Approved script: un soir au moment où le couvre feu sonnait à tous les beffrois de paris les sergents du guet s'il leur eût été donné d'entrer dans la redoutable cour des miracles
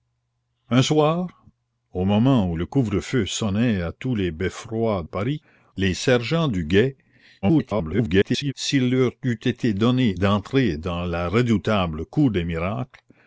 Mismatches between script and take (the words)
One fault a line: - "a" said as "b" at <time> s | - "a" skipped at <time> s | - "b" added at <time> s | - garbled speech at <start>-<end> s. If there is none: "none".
- "de" skipped at 5.0 s
- garbled speech at 7.4-8.5 s